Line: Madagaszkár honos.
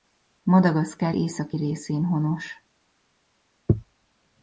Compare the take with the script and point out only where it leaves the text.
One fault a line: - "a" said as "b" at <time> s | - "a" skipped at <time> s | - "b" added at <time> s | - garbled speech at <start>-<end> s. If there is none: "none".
- "északi részén" added at 1.1 s